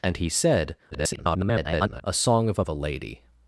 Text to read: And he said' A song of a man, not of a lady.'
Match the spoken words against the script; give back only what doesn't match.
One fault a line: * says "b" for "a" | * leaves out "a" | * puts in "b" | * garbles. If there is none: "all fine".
* garbles
* leaves out "man not"